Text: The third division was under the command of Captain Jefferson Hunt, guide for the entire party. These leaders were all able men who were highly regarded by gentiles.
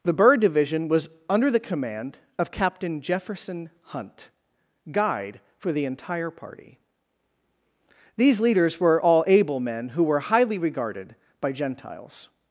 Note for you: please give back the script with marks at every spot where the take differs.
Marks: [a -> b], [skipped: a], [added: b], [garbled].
The [third -> bird] division was under the command of Captain Jefferson Hunt, guide for the entire party. These leaders were all able men who were highly regarded by gentiles.